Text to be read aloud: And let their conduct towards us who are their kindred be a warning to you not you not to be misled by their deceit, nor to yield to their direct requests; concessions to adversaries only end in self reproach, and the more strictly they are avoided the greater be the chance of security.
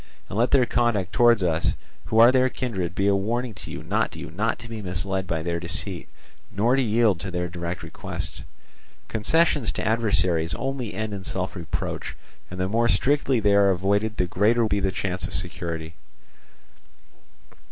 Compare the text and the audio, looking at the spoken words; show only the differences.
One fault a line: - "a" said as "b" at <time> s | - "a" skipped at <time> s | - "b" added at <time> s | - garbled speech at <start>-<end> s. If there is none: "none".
none